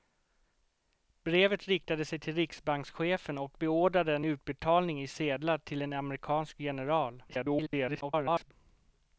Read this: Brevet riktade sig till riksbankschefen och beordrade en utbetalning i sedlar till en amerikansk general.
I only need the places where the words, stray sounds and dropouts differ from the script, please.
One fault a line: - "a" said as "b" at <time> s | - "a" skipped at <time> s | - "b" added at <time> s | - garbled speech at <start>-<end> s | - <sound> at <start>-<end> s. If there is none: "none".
- garbled speech at 7.3-8.5 s